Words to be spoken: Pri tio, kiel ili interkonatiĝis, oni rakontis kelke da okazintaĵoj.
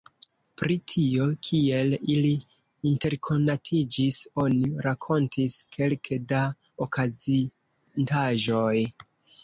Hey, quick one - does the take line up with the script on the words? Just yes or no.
yes